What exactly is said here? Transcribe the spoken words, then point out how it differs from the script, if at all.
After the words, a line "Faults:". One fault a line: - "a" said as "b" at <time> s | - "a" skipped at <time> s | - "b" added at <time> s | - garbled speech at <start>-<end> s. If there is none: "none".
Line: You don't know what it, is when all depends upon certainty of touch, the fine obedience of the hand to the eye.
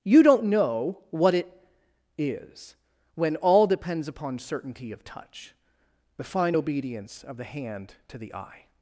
You don't know what it, is when all depends upon certainty of touch, the fine obedience of the hand to the eye.
Faults:
none